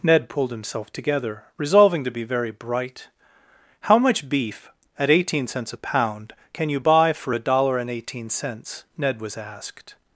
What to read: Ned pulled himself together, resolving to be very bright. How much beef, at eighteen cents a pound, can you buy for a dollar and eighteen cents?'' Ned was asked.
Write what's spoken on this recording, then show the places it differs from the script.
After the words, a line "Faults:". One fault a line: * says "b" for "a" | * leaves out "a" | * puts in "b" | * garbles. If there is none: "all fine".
Ned pulled himself together, resolving to be very bright. How much beef, at eighteen cents a pound, can you buy for a dollar and eighteen cents?'' Ned was asked.
Faults:
all fine